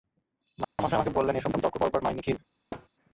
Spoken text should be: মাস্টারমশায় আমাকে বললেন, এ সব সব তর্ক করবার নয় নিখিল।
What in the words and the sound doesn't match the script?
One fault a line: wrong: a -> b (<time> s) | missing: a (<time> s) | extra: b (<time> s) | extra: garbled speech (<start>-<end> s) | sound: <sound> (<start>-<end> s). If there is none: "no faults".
sound: dropout (0.6-0.8 s)
sound: thud (2.7-2.9 s)